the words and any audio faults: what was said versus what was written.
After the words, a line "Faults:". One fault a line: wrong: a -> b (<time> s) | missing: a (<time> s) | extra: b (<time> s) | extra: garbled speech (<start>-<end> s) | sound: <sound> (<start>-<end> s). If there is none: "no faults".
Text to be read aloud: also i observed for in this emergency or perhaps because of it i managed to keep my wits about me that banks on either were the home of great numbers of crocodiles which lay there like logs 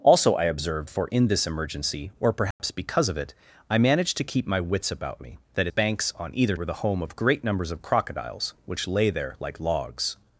also i observed for in this emergency or perhaps because of it i managed to keep my wits about me that banks on either were the home of great numbers of crocodiles which lay there like logs
Faults:
sound: dropout (2.5-2.6 s)